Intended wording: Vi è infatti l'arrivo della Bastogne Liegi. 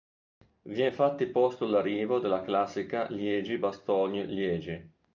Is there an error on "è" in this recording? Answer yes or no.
no